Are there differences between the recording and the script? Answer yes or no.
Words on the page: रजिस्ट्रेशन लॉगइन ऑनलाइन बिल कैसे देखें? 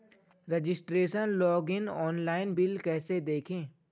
no